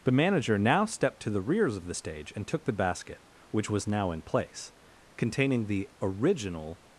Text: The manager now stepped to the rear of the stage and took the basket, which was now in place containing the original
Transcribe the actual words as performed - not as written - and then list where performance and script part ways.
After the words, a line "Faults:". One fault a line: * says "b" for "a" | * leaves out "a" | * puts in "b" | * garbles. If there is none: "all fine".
The manager now stepped to the rears of the stage and took the basket, which was now in place containing the original
Faults:
* says "rears" for "rear"